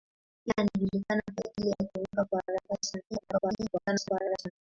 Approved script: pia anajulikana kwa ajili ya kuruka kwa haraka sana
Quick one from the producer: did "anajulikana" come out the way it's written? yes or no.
yes